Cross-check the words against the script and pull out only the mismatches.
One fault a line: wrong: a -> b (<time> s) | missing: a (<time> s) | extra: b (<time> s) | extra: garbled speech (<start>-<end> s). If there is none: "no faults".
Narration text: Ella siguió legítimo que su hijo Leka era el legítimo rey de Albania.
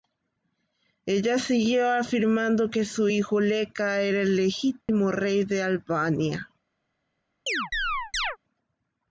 wrong: legítimo -> afirmando (1.9 s)